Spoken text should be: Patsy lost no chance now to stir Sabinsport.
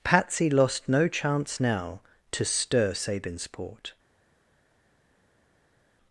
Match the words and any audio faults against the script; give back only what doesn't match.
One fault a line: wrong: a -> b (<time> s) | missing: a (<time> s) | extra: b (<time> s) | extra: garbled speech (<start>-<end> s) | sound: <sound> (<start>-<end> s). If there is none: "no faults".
no faults